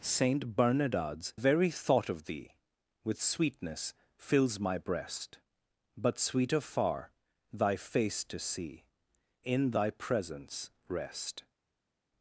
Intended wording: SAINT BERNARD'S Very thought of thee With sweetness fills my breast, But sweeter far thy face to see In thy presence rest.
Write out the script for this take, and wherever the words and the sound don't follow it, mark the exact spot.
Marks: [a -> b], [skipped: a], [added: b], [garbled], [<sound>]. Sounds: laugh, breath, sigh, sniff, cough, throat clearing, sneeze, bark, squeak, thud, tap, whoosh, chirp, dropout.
SAINT BERNARD'S Very thought of thee With sweetness fills my breast, But sweeter far thy face to see In thy presence rest.